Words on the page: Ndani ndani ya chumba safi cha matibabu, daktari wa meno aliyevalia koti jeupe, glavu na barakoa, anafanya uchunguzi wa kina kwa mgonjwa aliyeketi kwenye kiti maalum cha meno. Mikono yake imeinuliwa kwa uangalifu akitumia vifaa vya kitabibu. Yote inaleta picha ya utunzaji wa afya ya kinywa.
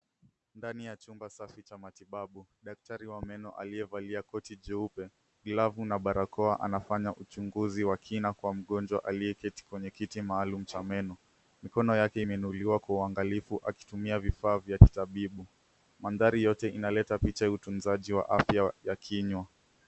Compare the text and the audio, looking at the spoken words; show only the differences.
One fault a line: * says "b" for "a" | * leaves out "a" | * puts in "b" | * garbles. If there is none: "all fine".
* leaves out "ndani"
* puts in "Mandhari"